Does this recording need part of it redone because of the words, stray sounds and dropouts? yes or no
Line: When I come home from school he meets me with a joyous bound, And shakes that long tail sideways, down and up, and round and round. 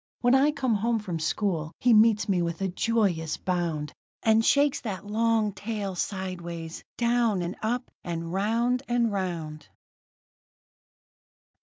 no